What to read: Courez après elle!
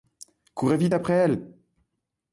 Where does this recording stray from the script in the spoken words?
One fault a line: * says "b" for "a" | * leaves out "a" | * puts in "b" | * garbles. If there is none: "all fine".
* puts in "vite"